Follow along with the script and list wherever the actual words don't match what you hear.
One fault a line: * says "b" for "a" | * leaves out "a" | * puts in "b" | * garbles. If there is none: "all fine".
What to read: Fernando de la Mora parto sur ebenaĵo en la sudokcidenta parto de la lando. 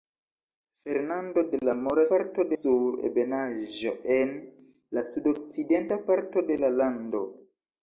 all fine